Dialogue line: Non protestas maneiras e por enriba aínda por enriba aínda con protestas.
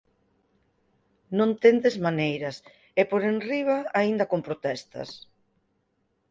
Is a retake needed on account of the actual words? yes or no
yes